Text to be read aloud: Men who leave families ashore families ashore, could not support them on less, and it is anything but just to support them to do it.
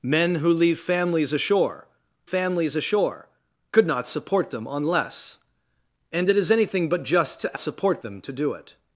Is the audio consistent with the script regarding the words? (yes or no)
yes